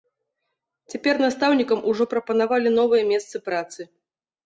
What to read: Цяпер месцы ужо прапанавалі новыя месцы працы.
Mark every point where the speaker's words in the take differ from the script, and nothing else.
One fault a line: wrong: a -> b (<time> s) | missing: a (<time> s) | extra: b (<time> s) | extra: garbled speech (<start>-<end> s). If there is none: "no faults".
wrong: месцы -> настаўнікам (1.2 s)